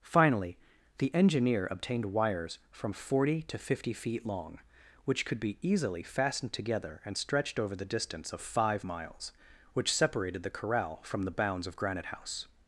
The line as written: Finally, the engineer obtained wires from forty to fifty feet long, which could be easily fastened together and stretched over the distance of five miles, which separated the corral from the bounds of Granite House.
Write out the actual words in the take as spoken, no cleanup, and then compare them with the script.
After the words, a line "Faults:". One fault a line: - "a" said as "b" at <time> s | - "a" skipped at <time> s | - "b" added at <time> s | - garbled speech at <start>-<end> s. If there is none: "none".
Finally, the engineer obtained wires from forty to fifty feet long, which could be easily fastened together and stretched over the distance of five miles, which separated the corral from the bounds of Granite House.
Faults:
none